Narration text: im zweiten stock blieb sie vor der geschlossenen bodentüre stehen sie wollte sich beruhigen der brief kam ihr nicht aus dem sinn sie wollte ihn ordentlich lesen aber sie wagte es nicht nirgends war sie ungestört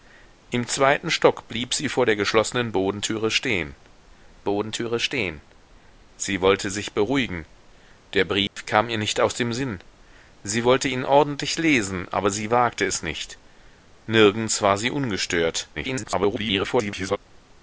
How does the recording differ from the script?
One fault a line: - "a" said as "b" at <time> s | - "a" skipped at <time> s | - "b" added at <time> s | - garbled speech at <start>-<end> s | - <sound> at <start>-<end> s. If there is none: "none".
- "bodentüre stehen" added at 4.4 s
- dropout at 8.5-8.6 s
- garbled speech at 15.7-17.2 s